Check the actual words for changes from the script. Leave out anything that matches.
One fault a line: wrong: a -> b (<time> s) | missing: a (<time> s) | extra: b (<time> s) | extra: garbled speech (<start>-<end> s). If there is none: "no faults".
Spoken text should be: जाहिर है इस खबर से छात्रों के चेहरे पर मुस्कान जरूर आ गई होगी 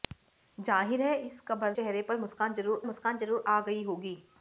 wrong: से छात्रों के चेहरे पर -> चेहरे पर मुस्कान जरूर (1.7 s)